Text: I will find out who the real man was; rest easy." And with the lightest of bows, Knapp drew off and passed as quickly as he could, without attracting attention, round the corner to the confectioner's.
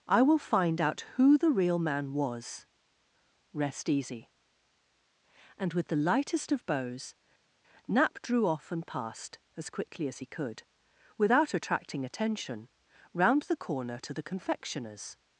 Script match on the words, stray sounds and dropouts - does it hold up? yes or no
yes